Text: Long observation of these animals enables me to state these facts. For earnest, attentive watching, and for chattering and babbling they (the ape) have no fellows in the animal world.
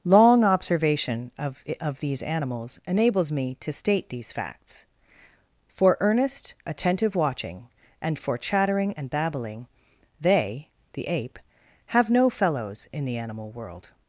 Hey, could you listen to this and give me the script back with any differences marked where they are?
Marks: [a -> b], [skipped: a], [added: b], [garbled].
Long observation of [added: of] these animals enables me to state these facts. For earnest, attentive watching, and for chattering and babbling they (the ape) have no fellows in the animal world.